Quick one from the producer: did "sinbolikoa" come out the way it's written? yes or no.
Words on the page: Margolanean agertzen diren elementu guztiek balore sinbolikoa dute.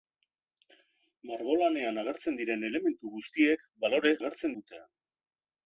no